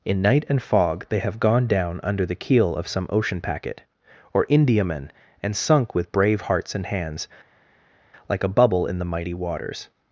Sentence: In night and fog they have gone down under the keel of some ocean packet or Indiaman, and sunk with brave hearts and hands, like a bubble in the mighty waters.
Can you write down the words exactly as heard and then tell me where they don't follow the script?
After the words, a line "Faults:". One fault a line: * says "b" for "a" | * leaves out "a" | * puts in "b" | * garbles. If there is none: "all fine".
In night and fog they have gone down under the keel of some ocean packet or Indiaman, and sunk with brave hearts and hands, like a bubble in the mighty waters.
Faults:
all fine